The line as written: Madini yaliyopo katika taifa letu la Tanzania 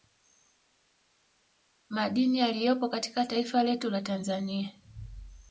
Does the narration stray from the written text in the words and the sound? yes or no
no